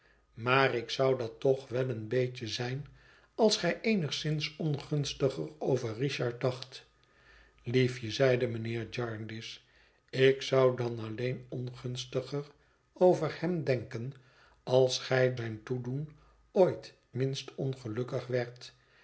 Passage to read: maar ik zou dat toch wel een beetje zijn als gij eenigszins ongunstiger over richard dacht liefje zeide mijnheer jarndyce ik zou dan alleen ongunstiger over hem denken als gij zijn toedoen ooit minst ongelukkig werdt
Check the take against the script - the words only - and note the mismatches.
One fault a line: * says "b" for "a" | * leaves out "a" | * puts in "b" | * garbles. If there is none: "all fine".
all fine